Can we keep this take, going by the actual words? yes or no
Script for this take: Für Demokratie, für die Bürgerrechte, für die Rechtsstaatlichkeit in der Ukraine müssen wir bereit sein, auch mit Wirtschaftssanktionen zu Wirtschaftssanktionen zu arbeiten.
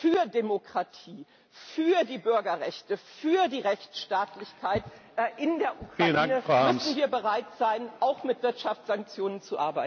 no